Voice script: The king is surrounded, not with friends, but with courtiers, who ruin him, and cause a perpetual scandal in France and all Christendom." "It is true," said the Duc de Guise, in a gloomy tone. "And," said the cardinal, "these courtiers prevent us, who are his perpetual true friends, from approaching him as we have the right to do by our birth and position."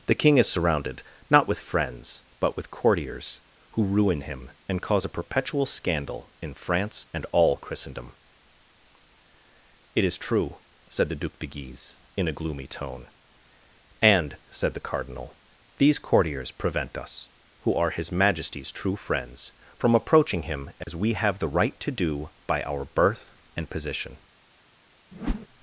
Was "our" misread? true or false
false